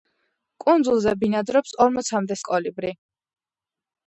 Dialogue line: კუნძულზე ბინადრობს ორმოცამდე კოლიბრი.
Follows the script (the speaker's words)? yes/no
yes